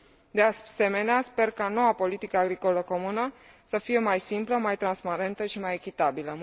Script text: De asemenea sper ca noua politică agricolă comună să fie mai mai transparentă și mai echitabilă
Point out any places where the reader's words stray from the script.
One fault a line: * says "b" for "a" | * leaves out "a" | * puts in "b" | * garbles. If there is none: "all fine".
* puts in "simplă"